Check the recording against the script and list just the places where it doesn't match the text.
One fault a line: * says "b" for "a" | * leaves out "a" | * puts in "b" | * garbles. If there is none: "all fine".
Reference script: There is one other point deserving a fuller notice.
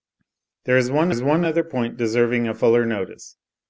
* puts in "is one"